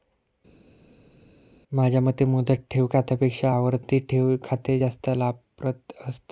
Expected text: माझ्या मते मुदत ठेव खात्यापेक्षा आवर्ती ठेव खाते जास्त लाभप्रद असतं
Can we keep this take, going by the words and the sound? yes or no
yes